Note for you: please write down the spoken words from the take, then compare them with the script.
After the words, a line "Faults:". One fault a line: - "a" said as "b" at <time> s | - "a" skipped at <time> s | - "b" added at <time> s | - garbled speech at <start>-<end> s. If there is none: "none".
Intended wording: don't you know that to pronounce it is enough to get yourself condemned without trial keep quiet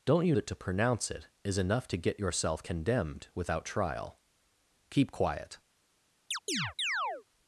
don't you that to pronounce it is enough to get yourself condemned without trial keep quiet
Faults:
- "know" skipped at 0.3 s